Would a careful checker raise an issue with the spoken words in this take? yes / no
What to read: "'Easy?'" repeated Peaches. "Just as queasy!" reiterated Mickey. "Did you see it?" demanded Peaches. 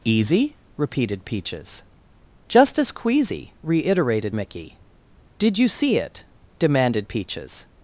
no